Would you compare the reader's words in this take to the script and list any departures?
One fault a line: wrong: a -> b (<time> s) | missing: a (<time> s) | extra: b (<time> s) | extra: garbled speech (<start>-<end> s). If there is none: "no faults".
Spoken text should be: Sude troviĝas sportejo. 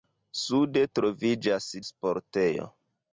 no faults